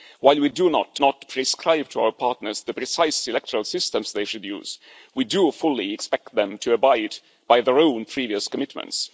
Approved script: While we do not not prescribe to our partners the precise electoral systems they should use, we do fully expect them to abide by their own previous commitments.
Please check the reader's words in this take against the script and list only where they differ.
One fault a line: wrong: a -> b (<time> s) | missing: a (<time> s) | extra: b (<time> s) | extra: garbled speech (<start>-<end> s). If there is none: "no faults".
no faults